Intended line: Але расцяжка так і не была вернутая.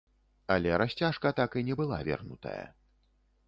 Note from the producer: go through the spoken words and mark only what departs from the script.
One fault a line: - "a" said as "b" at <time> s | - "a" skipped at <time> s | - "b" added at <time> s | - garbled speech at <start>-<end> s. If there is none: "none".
none